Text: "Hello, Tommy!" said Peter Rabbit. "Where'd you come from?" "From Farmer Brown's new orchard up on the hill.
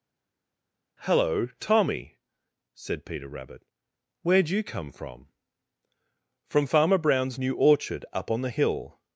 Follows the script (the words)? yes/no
yes